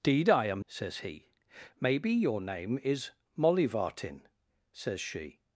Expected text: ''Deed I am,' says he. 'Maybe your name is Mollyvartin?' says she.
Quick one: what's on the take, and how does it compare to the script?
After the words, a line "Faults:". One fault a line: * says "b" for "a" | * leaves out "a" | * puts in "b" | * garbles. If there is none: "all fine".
''Deed I am,' says he. 'Maybe your name is Mollyvartin?' says she.
Faults:
all fine